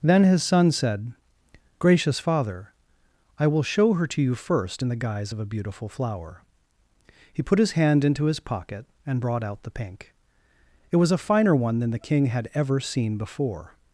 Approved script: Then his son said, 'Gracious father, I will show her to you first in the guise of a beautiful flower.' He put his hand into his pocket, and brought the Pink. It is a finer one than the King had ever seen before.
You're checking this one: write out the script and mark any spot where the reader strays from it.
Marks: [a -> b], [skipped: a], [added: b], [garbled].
Then his son said, 'Gracious father, I will show her to you first in the guise of a beautiful flower.' He put his hand into his pocket, and brought [added: out] the Pink. It [is -> was] a finer one than the King had ever seen before.